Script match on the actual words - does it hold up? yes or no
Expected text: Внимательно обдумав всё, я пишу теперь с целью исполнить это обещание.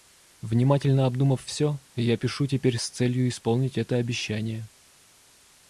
yes